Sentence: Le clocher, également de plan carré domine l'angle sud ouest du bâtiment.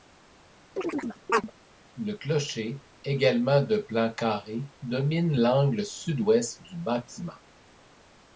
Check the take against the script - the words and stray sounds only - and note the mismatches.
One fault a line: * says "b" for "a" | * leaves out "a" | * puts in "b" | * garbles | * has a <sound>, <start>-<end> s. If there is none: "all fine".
* has a chirp, 0.8-1.5 s